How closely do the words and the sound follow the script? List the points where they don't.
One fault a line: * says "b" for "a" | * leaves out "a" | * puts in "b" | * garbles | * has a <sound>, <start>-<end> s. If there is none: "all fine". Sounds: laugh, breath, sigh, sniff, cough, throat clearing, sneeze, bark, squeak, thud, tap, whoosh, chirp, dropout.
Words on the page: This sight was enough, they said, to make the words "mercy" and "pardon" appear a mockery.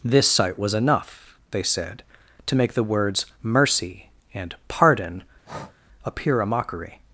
* has a breath, 5.4-5.8 s